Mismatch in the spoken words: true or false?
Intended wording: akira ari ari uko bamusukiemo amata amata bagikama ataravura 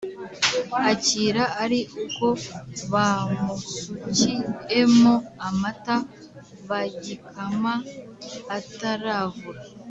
true